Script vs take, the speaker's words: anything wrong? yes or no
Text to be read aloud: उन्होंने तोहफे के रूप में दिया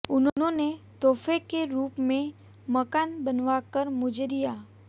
yes